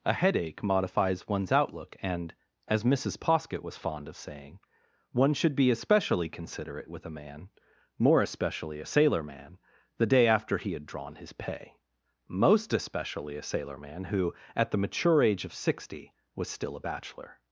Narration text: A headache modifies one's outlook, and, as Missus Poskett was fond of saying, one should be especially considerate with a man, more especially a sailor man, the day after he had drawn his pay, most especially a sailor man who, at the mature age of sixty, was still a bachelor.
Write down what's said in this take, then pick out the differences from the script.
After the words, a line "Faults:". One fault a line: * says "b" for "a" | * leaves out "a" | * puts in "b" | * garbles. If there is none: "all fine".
A headache modifies one's outlook, and, as Missus Poskett was fond of saying, one should be especially considerate with a man, more especially a sailor man, the day after he had drawn his pay, most especially a sailor man who, at the mature age of sixty, was still a bachelor.
Faults:
all fine